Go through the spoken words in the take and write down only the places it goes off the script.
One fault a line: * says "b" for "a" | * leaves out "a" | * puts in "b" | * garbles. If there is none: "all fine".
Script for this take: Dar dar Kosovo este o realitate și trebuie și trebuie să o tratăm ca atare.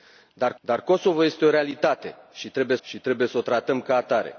all fine